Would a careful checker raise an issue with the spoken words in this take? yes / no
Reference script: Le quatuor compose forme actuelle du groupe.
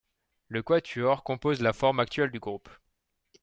yes